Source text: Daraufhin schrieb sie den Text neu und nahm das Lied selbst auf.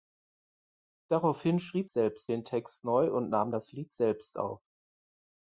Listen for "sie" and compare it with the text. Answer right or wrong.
wrong